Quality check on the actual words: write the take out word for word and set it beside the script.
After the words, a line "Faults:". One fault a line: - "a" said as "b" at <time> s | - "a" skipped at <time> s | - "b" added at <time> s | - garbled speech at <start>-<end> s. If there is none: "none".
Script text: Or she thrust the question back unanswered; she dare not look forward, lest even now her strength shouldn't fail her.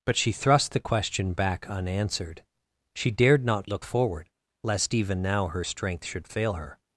But she thrust the question back unanswered; she dared not look forward, lest even now her strength should fail her.
Faults:
- "Or" said as "But" at 0.1 s
- "dare" said as "dared" at 3.1 s
- "shouldn't" said as "should" at 6.1 s